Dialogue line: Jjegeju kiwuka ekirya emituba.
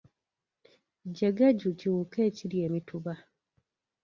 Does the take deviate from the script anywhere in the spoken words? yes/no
no